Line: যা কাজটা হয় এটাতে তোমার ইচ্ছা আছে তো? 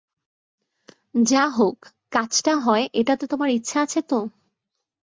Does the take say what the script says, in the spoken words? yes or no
no